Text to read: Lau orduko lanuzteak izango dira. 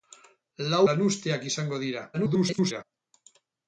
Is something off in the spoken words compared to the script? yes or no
yes